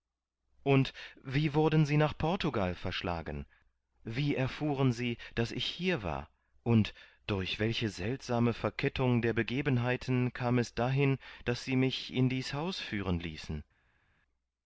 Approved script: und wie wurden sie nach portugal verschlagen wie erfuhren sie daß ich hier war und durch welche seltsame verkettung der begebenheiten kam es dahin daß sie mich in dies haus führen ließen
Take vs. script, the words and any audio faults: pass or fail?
pass